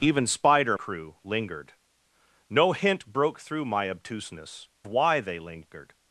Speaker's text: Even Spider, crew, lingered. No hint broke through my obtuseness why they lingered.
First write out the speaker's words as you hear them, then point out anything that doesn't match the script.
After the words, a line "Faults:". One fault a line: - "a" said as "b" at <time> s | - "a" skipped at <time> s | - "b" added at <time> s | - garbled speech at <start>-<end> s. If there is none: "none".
Even Spider, crew, lingered. No hint broke through my obtuseness why they lingered.
Faults:
none